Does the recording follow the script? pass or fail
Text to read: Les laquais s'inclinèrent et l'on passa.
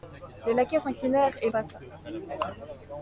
fail